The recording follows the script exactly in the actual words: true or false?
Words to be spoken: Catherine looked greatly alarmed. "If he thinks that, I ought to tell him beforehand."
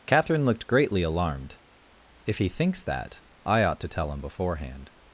true